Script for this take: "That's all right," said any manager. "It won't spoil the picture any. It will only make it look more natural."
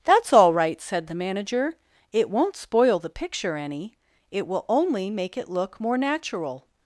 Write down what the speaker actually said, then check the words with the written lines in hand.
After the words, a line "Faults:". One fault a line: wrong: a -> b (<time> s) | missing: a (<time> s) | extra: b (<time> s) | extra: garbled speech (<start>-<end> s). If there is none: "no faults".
"That's all right," said the manager. "It won't spoil the picture any. It will only make it look more natural."
Faults:
wrong: any -> the (1.1 s)